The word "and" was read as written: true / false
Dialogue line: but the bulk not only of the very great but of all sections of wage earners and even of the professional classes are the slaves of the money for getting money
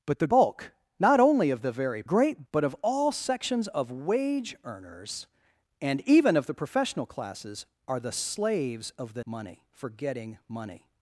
true